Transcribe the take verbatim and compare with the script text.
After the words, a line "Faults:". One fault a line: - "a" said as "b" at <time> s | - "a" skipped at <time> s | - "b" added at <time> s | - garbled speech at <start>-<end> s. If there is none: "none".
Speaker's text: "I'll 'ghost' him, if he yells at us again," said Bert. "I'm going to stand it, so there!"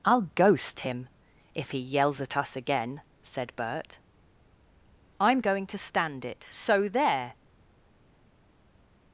"I'll 'ghost' him, if he yells at us again," said Bert. "I'm going to stand it, so there!"
Faults:
none